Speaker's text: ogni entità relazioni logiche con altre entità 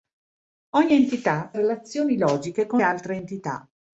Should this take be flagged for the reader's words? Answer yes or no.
no